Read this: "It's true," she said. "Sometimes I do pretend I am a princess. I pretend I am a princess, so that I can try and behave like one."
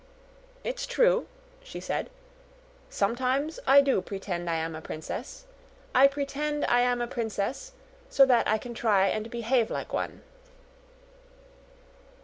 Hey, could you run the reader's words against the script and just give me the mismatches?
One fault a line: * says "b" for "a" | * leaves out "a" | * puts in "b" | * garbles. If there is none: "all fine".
all fine